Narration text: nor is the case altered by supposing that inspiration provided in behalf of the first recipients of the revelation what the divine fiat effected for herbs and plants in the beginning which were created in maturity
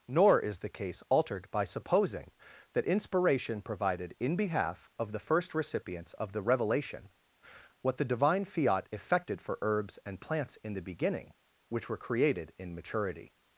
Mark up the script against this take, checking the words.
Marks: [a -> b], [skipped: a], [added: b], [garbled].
nor is the case altered by supposing that inspiration provided in behalf of the first recipients of the revelation what the divine fiat effected for herbs and plants in the beginning which were created in maturity